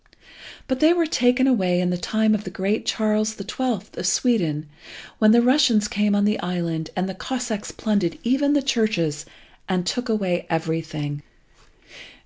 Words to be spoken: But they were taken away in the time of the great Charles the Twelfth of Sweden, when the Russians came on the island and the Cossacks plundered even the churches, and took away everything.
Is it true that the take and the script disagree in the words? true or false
false